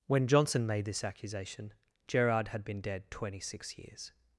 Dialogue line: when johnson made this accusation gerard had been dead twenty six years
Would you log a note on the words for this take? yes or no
no